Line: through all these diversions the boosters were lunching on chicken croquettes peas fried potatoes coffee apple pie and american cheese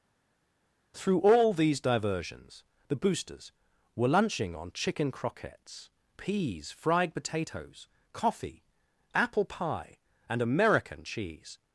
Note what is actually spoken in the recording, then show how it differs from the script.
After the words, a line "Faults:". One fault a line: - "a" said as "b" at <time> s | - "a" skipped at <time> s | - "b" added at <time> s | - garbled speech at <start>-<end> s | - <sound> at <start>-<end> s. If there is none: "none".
through all these diversions the boosters were lunching on chicken croquettes peas fried potatoes coffee apple pie and american cheese
Faults:
none